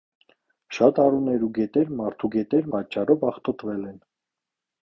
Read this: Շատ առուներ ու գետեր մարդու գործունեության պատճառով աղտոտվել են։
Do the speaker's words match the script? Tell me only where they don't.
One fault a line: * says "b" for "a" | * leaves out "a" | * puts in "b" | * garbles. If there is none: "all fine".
* says "գետեր" for "գործունեության"